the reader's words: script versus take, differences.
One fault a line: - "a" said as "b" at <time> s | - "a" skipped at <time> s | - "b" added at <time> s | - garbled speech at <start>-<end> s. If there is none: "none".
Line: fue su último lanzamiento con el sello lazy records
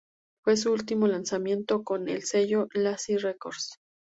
none